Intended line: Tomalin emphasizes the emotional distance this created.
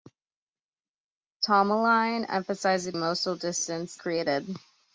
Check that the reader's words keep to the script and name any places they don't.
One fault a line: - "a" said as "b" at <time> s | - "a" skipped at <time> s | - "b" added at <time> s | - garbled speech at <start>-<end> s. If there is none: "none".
- "the" skipped at 2.9 s
- "this" skipped at 4.0 s